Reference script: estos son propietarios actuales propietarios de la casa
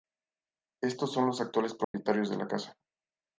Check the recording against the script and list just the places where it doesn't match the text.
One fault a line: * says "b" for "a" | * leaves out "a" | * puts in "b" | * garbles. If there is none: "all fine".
* says "los" for "propietarios"